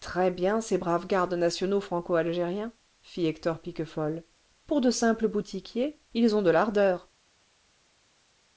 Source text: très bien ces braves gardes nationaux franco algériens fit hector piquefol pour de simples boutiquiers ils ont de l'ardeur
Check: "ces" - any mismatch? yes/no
no